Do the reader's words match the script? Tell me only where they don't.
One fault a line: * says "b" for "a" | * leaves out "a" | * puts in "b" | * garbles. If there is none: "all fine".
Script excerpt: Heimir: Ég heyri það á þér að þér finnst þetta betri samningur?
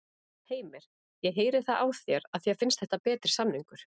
all fine